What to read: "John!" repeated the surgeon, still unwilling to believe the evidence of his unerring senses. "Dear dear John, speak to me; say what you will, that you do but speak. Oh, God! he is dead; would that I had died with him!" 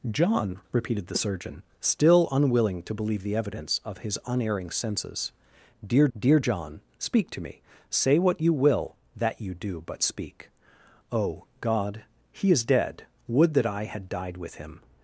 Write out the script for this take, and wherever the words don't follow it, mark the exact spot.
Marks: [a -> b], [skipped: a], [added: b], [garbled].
"John!" repeated the surgeon, still unwilling to believe the evidence of his unerring senses. "Dear dear John, speak to me; say what you will, that you do but speak. Oh, God! he is dead; would that I had died with him!"